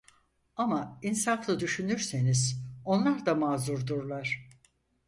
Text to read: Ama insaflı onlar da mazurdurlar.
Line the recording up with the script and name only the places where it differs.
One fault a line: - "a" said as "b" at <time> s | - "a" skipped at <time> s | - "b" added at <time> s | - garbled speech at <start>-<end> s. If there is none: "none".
- "düşünürseniz" added at 1.6 s